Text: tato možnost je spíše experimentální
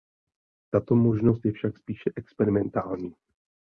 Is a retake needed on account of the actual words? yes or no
yes